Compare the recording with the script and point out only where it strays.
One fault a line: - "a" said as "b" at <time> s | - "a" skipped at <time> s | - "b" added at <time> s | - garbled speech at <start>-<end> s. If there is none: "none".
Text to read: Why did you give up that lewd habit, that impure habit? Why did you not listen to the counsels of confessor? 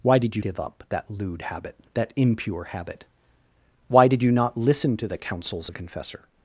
none